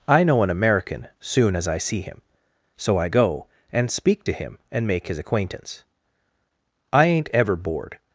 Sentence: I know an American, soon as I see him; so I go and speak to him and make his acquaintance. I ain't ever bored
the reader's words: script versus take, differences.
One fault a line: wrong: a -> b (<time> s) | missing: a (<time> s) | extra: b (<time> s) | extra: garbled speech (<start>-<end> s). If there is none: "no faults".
no faults